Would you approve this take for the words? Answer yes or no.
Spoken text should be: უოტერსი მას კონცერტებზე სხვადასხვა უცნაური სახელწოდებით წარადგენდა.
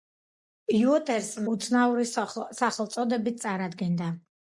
no